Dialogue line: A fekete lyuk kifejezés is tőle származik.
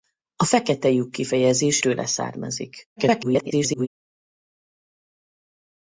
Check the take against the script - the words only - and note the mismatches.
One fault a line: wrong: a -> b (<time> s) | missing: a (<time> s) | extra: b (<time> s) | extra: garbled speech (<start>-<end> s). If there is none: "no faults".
missing: is (1.8 s)
extra: garbled speech (3.0-3.9 s)